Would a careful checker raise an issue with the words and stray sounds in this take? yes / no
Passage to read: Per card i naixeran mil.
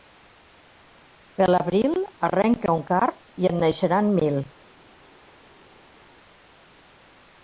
yes